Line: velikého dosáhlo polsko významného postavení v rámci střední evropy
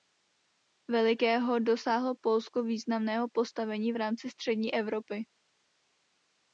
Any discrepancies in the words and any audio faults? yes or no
no